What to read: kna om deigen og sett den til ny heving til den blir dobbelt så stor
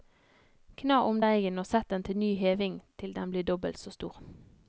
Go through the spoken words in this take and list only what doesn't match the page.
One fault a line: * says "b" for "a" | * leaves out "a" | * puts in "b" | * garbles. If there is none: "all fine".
all fine